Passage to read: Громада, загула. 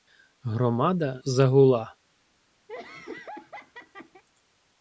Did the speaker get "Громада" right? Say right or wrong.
right